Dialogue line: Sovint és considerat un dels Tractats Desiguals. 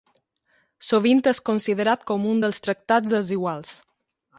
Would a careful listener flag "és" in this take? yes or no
no